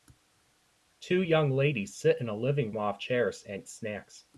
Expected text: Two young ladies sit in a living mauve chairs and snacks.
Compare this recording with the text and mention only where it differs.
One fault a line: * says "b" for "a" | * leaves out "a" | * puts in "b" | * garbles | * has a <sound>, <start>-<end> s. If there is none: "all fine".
all fine